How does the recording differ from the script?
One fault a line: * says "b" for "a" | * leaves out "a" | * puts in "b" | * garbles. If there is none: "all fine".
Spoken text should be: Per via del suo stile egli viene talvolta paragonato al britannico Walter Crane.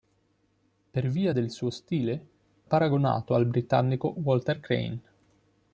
* leaves out "egli viene talvolta"